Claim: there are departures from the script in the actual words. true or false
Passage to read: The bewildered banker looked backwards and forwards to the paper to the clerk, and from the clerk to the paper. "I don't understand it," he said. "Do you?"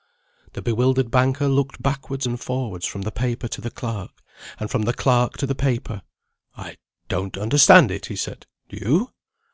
true